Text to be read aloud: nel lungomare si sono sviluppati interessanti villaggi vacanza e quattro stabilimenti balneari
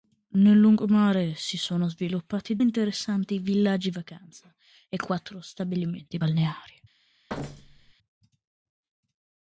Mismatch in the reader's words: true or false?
false